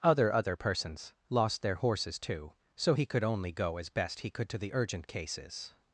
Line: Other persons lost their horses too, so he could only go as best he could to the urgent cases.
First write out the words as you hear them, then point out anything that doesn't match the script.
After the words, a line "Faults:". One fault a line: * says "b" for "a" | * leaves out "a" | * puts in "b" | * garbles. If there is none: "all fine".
Other other persons lost their horses too, so he could only go as best he could to the urgent cases.
Faults:
* puts in "other"